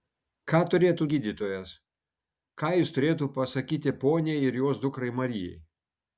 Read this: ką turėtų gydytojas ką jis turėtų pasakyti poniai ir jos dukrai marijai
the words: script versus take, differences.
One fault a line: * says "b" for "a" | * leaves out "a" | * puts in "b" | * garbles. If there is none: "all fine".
all fine